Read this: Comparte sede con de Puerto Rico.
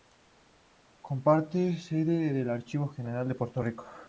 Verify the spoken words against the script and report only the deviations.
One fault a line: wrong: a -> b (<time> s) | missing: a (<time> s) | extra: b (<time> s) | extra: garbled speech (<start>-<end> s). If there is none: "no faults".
extra: el Archivo General (2.4 s)